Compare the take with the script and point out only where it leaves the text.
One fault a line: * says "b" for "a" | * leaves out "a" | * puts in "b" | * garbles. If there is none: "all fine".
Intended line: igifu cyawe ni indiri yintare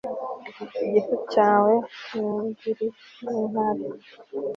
all fine